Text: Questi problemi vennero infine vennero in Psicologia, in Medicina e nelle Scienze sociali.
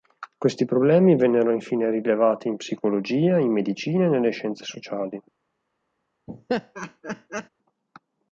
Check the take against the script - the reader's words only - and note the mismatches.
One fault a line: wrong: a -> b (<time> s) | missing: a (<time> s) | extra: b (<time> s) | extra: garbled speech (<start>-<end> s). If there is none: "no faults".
wrong: vennero -> rilevati (1.9 s)